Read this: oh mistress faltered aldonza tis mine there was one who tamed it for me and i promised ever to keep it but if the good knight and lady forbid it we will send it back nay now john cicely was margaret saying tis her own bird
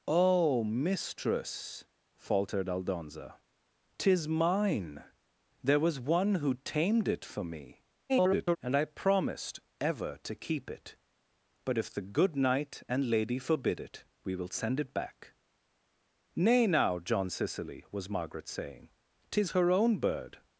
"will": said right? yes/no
yes